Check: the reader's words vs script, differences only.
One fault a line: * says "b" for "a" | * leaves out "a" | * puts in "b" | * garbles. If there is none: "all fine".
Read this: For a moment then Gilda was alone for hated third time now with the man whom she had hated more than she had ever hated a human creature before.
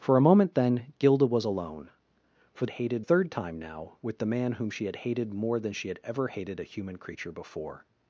all fine